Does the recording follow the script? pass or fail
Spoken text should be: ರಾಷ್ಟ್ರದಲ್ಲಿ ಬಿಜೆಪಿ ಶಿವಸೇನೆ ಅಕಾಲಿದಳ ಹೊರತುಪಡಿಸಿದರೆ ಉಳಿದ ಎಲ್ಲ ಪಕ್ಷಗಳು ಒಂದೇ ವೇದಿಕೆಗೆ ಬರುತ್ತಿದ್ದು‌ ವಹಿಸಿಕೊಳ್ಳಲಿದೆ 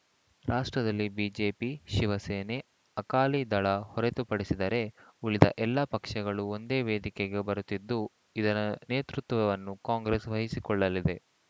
fail